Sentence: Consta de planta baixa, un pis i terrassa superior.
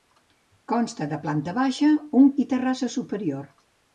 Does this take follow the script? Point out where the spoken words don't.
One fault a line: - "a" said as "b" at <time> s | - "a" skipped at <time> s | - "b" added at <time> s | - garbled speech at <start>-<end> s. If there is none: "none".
- "pis" skipped at 2.3 s